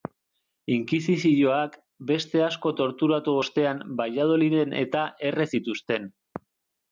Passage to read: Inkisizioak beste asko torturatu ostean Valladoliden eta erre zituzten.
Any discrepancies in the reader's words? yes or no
no